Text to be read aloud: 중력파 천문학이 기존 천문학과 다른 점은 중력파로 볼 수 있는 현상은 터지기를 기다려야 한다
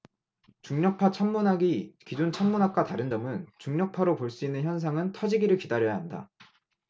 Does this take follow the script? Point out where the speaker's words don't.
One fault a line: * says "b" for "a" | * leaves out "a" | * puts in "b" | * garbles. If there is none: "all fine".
all fine